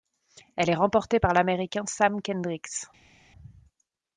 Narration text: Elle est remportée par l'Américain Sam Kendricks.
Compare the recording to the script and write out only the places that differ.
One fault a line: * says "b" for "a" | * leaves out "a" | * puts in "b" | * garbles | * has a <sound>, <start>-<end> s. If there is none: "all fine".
all fine